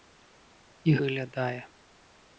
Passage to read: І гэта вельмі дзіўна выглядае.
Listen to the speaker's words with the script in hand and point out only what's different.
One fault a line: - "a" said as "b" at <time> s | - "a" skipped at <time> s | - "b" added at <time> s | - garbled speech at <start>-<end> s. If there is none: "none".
- "гэта вельмі дзіўна" skipped at 0.9 s